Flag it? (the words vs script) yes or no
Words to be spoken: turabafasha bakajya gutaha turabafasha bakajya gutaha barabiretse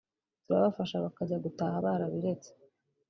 yes